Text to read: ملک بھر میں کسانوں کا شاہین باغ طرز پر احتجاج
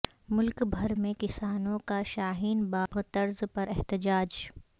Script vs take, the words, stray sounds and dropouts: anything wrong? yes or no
yes